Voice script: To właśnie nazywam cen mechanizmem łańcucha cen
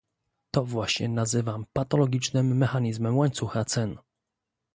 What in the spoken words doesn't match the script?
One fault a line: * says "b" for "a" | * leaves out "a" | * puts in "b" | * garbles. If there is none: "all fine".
* says "patologicznym" for "cen"